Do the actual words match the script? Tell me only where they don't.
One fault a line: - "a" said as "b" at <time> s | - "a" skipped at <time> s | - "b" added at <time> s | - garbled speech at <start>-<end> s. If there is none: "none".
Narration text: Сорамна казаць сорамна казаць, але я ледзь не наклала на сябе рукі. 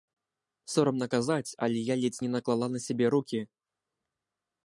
- "сорамна казаць" skipped at 1.6 s